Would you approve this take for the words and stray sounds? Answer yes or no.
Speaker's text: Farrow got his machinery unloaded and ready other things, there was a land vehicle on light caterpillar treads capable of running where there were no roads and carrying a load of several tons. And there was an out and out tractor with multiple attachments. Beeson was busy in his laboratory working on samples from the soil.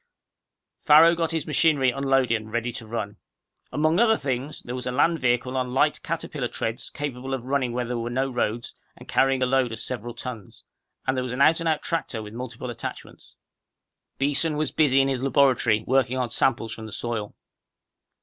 no